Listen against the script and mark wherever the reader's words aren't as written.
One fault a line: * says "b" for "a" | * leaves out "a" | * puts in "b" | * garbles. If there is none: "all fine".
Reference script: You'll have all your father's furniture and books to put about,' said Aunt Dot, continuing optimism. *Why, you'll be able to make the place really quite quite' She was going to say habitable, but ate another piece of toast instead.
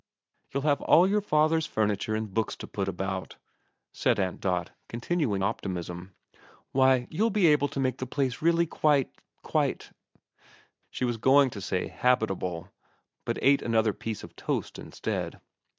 all fine